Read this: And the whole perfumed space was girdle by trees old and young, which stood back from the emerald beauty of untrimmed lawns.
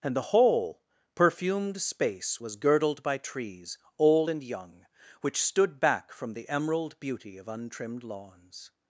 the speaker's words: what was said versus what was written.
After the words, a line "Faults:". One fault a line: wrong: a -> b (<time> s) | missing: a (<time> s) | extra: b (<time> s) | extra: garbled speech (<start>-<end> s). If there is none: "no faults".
And the whole perfumed space was girdled by trees old and young, which stood back from the emerald beauty of untrimmed lawns.
Faults:
wrong: girdle -> girdled (2.6 s)